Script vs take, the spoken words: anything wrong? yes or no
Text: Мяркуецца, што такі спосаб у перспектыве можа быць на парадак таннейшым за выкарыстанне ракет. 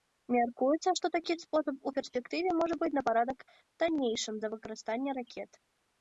no